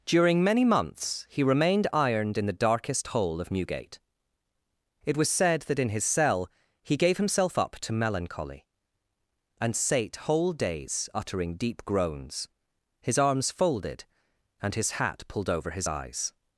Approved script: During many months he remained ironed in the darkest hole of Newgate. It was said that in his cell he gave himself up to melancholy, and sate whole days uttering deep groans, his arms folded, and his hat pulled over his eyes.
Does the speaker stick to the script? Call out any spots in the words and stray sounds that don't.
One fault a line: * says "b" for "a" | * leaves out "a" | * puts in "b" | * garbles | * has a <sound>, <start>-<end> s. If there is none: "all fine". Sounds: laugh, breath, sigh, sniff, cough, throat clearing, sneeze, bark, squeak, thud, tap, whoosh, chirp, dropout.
all fine